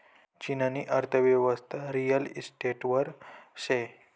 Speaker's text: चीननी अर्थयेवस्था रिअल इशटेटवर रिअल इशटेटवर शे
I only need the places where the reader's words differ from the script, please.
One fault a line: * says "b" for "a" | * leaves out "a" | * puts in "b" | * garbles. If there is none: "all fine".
* leaves out "रिअल इशटेटवर"